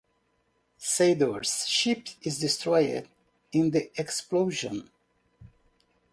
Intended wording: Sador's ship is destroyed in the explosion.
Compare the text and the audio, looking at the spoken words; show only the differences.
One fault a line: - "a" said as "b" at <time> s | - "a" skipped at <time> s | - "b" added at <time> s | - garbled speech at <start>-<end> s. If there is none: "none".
none